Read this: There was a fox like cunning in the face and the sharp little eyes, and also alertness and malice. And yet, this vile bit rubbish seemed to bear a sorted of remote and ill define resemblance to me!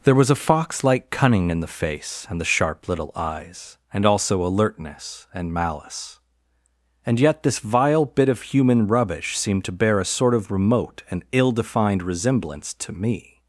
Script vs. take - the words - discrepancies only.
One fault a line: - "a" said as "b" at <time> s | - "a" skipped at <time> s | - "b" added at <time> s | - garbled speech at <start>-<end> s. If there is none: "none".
- "of human" added at 8.3 s
- "sorted" said as "sort" at 10.1 s
- "define" said as "defined" at 11.5 s